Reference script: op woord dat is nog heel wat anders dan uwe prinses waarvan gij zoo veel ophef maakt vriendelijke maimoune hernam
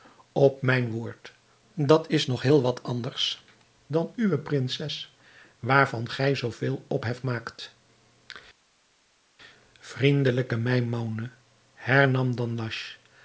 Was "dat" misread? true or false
false